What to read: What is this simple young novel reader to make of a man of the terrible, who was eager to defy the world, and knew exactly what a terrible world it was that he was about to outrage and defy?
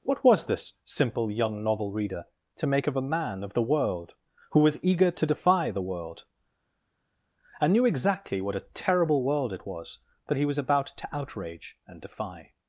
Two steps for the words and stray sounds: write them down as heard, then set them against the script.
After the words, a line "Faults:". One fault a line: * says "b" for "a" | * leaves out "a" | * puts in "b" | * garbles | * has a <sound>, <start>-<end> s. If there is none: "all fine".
What was this simple young novel reader to make of a man of the world, who was eager to defy the world, and knew exactly what a terrible world it was that he was about to outrage and defy?
Faults:
* says "was" for "is"
* says "world" for "terrible"